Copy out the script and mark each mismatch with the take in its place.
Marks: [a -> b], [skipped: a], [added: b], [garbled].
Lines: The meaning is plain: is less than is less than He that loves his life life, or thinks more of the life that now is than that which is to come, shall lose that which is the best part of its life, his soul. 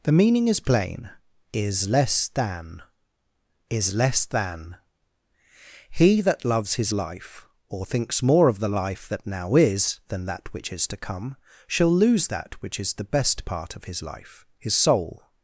The meaning is plain: is less than is less than He that loves his life [skipped: life,] or thinks more of the life that now is than that which is to come, shall lose that which is the best part of [its -> his] life, his soul.